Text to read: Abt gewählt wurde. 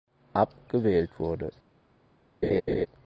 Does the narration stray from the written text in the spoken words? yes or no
no